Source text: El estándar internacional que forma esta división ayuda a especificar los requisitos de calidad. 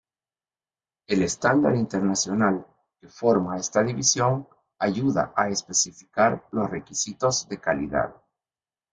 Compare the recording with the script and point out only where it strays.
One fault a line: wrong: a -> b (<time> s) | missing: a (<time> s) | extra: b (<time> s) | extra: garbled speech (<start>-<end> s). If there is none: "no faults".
no faults